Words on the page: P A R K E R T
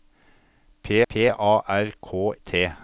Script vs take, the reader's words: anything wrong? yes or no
yes